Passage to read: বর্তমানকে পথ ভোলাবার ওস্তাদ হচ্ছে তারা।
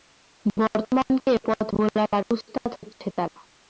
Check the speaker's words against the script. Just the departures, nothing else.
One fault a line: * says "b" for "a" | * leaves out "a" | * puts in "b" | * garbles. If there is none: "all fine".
all fine